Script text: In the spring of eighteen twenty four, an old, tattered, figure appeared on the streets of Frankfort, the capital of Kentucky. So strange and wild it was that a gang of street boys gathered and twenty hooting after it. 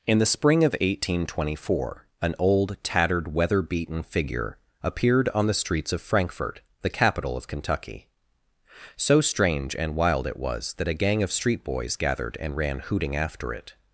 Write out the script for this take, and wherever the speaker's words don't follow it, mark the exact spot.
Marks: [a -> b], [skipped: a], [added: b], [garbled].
In the spring of eighteen twenty four, an old, tattered, [added: weather beaten] figure appeared on the streets of Frankfort, the capital of Kentucky. So strange and wild it was that a gang of street boys gathered and [twenty -> ran] hooting after it.